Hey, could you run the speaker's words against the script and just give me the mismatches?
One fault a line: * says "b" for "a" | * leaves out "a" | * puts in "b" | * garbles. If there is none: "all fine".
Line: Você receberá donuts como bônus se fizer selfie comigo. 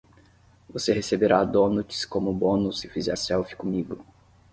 all fine